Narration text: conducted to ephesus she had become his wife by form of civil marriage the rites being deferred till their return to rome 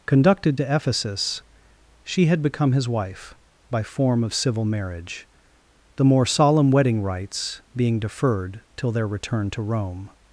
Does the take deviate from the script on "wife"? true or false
false